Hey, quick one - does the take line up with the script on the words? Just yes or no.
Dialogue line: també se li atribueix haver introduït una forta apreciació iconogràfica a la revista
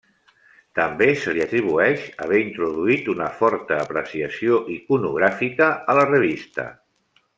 yes